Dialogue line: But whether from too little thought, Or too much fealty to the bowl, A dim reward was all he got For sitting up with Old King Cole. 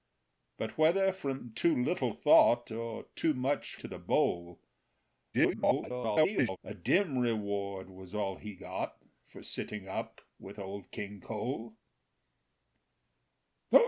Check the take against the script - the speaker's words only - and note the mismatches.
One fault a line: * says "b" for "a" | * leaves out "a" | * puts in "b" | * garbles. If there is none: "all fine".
* leaves out "fealty"
* garbles